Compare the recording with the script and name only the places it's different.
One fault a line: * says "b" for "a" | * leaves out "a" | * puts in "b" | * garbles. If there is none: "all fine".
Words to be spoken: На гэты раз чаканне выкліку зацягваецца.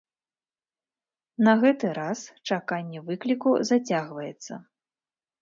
all fine